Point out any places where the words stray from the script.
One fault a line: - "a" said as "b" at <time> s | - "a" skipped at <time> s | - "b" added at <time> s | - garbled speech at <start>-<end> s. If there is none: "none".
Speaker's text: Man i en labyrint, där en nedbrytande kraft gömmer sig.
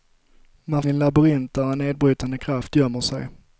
none